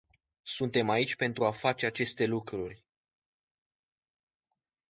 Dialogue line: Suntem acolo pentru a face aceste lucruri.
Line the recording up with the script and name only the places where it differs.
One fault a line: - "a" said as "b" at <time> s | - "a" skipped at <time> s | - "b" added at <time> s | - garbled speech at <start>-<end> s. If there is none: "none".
- "acolo" said as "aici" at 0.9 s